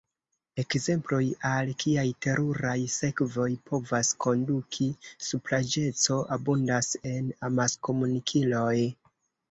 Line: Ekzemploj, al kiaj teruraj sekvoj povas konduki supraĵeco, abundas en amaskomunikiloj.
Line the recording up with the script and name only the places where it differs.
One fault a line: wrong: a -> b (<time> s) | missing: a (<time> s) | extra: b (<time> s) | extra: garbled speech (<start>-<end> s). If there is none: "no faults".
no faults